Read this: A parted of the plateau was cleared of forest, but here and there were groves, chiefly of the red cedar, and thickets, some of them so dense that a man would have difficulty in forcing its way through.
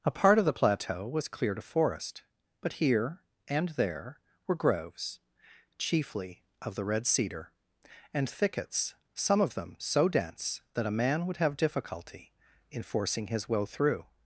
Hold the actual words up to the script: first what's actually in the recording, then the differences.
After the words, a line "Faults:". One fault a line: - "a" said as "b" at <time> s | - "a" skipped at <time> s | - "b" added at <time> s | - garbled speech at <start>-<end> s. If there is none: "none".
A part of the plateau was cleared of forest, but here and there were groves, chiefly of the red cedar, and thickets, some of them so dense that a man would have difficulty in forcing his way through.
Faults:
- "parted" said as "part" at 0.1 s
- "its" said as "his" at 13.3 s